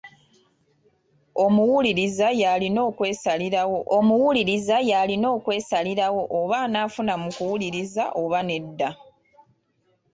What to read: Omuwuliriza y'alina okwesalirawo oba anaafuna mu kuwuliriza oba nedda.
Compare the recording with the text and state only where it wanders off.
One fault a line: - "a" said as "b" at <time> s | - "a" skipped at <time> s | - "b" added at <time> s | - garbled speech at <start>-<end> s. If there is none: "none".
- "omuwuliriza y'alina okwesalirawo" added at 4.0 s